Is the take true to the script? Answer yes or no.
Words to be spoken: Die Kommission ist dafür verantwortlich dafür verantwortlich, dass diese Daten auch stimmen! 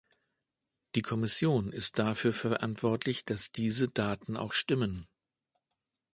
no